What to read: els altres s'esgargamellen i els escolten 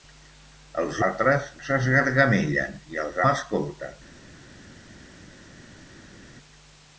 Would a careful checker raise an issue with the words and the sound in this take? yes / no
no